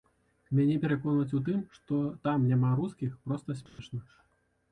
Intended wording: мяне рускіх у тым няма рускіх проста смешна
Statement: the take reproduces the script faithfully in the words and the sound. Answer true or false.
false